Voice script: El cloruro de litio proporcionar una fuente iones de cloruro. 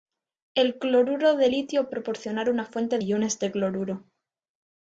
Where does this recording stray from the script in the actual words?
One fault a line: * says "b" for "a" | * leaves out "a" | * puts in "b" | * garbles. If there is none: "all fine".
all fine